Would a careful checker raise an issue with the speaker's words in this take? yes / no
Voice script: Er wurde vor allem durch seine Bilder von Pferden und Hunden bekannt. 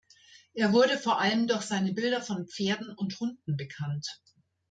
no